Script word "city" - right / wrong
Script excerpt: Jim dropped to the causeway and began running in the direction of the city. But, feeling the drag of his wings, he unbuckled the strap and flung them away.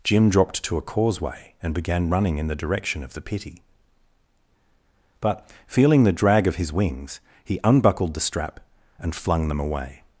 wrong